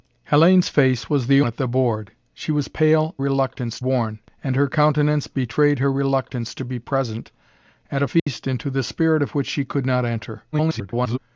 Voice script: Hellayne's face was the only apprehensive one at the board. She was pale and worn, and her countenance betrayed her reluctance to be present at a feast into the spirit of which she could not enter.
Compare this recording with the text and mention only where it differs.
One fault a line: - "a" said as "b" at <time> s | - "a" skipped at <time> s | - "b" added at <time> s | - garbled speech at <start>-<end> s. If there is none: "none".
- "only apprehensive one" skipped at 1.4 s
- "and" said as "reluctance" at 3.2 s
- garbled speech at 10.5-11.2 s